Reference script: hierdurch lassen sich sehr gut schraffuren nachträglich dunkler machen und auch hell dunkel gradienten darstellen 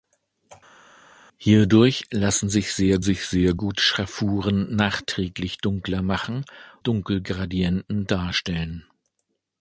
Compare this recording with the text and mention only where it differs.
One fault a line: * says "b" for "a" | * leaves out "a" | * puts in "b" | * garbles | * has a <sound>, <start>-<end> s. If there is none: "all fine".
* puts in "sich sehr"
* leaves out "und auch hell"